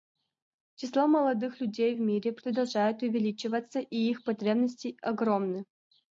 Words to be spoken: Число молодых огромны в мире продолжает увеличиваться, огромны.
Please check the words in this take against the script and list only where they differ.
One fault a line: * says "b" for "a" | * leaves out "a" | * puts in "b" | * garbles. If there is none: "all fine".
* says "людей" for "огромны"
* puts in "и их потребности"